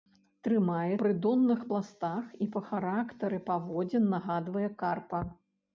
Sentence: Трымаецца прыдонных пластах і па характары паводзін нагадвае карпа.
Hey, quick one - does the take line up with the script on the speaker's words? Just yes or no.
yes